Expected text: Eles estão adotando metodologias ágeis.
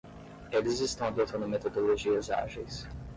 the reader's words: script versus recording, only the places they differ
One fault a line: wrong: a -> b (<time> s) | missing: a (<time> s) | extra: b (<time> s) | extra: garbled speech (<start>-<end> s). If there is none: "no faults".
no faults